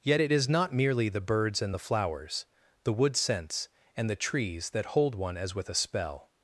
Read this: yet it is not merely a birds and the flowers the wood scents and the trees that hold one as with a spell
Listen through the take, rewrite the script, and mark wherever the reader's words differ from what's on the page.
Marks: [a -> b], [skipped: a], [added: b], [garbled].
yet it is not merely [a -> the] birds and the flowers the wood scents and the trees that hold one as with a spell